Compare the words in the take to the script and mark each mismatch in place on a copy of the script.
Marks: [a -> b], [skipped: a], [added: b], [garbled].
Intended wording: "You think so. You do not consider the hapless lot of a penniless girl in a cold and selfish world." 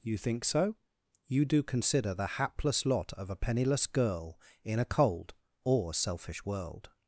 "You think so. You do [skipped: not] consider the hapless lot of a penniless girl in a cold [and -> or] selfish world."